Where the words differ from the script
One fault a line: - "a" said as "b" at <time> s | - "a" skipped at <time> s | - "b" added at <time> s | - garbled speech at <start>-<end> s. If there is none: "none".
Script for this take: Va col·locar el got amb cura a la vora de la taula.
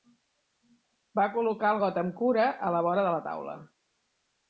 none